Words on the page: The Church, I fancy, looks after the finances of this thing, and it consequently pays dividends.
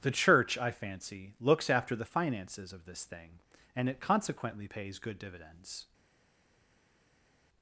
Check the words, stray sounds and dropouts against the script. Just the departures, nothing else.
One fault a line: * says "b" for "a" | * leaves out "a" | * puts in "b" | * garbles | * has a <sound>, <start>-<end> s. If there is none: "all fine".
* puts in "good"